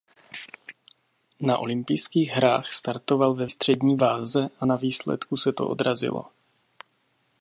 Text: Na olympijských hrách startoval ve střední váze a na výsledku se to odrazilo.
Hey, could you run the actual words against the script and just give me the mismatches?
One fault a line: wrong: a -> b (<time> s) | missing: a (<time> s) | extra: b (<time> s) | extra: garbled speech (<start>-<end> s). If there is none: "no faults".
no faults